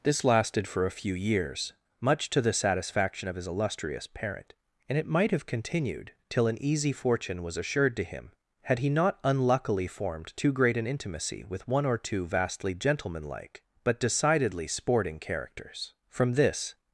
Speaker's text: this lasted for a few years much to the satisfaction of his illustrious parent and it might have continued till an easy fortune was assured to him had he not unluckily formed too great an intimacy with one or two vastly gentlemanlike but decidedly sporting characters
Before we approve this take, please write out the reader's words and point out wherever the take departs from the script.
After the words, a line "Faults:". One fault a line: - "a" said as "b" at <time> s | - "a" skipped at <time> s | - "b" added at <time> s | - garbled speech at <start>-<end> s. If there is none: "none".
this lasted for a few years much to the satisfaction of his illustrious parent and it might have continued till an easy fortune was assured to him had he not unluckily formed too great an intimacy with one or two vastly gentlemanlike but decidedly sporting characters from this
Faults:
- "from this" added at 16.1 s